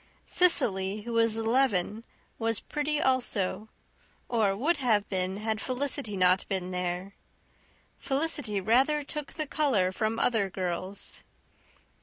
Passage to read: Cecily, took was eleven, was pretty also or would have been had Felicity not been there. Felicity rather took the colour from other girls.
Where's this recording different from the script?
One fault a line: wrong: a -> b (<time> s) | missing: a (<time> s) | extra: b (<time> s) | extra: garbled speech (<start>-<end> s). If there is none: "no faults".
wrong: took -> who (1.0 s)